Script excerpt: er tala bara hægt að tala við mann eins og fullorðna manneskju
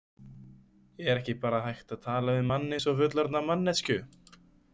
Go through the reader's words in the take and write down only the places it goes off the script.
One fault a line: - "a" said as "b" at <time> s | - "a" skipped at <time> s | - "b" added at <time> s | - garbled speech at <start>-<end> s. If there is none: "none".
- "tala" said as "ekki" at 1.2 s